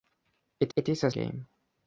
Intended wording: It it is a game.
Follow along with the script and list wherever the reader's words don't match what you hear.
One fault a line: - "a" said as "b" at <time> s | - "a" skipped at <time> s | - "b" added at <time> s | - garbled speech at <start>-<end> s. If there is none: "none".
none